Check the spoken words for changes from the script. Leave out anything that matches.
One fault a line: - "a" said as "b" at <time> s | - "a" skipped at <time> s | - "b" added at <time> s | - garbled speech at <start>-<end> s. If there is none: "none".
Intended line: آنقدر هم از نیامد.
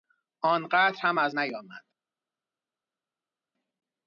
none